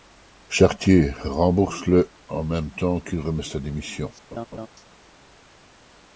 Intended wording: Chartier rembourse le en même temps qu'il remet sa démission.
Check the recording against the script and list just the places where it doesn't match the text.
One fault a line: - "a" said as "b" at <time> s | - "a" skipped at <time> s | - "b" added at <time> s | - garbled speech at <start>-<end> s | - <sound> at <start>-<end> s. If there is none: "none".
- laugh at 4.3-4.7 s